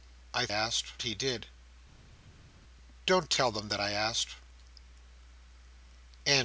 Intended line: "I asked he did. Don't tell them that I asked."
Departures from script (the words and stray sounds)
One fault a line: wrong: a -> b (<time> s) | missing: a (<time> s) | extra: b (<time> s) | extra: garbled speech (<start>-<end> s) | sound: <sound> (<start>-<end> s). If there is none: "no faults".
no faults